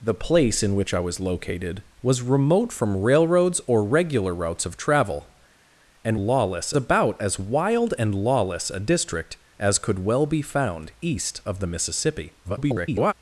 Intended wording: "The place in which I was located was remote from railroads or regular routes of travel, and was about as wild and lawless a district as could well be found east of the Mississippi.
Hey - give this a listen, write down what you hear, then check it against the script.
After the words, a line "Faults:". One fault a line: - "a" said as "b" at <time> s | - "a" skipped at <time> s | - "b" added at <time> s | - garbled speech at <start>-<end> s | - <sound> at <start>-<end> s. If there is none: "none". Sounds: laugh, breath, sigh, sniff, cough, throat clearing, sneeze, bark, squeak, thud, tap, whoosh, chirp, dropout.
"The place in which I was located was remote from railroads or regular routes of travel, and lawless about as wild and lawless a district as could well be found east of the Mississippi. [garbled]
Faults:
- "was" said as "lawless" at 6.2 s
- garbled speech at 12.4-13.1 s